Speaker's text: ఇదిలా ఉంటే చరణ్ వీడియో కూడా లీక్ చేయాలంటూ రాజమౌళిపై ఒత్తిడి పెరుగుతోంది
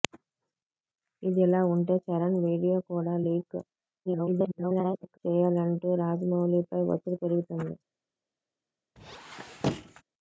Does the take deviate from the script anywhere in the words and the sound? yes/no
yes